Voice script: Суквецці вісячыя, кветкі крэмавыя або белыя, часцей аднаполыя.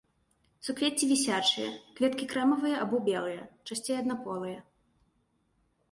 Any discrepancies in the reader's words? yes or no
no